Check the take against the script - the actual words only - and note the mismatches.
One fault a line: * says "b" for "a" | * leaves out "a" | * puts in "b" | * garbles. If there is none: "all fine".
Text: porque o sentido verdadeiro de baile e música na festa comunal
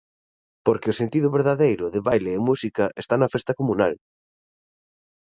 * puts in "está"